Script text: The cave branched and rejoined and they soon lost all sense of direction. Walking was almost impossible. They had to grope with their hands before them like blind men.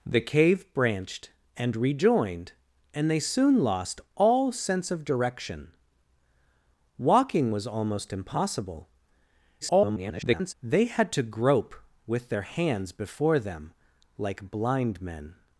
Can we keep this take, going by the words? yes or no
no